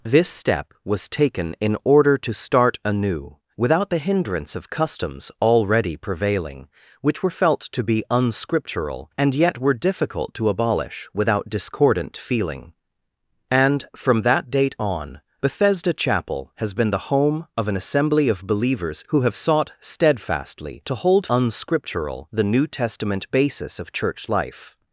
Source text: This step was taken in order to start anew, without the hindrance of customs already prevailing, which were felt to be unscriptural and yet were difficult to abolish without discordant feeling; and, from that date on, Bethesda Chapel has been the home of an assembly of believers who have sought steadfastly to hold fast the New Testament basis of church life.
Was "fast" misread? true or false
true